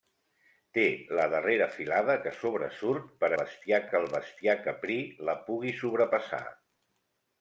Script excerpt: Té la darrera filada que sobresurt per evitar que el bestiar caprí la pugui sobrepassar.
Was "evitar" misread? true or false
true